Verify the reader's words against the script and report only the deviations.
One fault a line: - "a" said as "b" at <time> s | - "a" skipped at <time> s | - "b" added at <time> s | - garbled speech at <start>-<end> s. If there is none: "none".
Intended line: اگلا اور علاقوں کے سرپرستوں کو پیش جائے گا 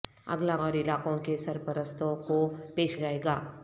none